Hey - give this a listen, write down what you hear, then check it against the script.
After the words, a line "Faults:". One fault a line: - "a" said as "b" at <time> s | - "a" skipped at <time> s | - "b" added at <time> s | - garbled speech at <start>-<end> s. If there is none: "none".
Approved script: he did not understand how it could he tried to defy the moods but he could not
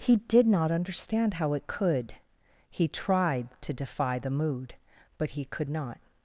he did not understand how it could he tried to defy the mood but he could not
Faults:
- "moods" said as "mood" at 4.3 s